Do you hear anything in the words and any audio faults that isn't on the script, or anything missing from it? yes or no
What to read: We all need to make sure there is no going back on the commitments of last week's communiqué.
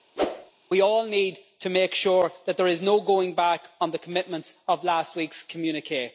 yes